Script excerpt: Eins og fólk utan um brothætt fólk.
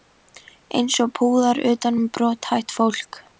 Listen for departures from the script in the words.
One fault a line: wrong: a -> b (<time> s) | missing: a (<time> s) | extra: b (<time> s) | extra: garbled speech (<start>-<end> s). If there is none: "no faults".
wrong: fólk -> púðar (1.2 s)